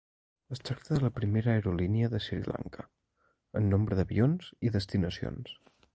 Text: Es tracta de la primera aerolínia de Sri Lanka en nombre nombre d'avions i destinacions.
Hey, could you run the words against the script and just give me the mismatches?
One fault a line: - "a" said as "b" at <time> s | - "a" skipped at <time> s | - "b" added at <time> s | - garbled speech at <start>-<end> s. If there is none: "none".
- "nombre" skipped at 4.0 s